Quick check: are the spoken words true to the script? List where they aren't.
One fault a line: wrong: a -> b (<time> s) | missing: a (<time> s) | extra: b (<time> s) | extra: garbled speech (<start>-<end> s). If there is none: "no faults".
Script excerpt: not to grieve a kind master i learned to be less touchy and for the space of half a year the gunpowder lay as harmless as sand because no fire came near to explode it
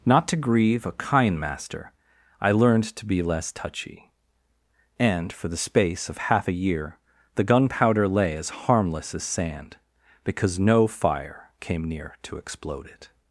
no faults